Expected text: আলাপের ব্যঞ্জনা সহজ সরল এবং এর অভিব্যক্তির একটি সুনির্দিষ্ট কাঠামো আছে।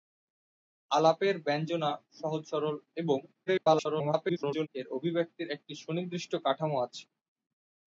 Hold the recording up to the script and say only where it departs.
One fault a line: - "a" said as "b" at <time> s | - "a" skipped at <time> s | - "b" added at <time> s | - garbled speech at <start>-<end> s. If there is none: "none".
- garbled speech at 3.5-4.7 s